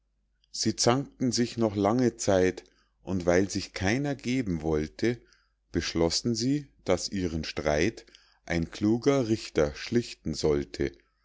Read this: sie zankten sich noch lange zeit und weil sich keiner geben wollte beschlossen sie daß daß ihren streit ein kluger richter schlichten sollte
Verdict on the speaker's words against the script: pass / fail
fail